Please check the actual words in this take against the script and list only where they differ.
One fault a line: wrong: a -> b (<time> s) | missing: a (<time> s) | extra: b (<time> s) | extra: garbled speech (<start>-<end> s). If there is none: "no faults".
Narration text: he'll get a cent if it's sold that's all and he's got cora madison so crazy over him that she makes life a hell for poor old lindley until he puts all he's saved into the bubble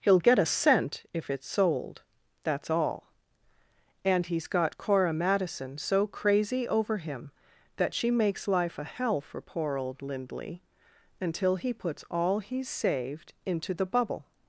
no faults